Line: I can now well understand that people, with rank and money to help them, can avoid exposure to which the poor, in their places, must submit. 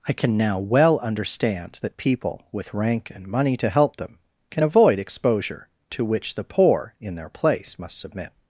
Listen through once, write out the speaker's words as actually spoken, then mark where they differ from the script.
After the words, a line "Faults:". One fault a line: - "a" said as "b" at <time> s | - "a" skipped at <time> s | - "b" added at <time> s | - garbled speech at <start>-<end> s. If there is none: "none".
I can now well understand that people, with rank and money to help them, can avoid exposure to which the poor, in their place, must submit.
Faults:
- "places" said as "place" at 7.3 s